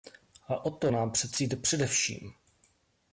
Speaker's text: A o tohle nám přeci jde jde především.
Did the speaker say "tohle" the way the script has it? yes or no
no